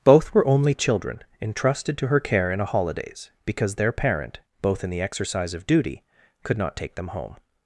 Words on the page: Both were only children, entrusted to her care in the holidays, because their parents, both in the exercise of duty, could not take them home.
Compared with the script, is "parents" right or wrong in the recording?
wrong